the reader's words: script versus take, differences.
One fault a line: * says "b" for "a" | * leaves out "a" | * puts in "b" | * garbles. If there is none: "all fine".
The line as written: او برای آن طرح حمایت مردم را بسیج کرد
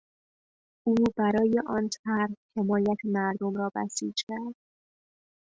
all fine